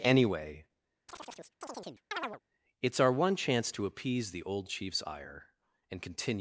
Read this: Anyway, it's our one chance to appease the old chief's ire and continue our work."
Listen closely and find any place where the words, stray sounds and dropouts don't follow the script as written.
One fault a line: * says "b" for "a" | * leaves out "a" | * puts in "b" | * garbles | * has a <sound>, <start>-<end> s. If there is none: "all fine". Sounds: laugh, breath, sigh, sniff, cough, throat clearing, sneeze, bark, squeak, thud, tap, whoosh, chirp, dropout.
* has a chirp, 1.1-2.4 s
* leaves out "our work"